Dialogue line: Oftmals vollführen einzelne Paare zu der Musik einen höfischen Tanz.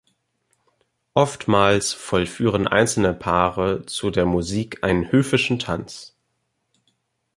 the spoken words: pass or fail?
pass